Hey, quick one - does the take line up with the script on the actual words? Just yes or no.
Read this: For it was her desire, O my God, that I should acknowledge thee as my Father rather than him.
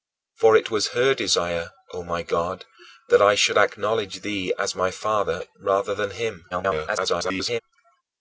no